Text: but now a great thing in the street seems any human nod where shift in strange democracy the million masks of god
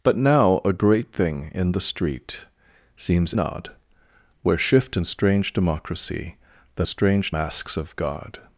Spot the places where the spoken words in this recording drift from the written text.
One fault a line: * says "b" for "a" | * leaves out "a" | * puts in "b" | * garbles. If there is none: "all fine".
* leaves out "any human"
* says "strange" for "million"